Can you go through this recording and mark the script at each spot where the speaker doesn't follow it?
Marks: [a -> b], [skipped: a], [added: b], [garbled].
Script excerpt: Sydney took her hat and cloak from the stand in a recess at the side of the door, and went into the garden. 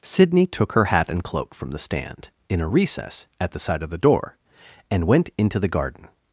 Sydney took her hat and cloak from the stand in a recess at the side of the door, and went into the garden.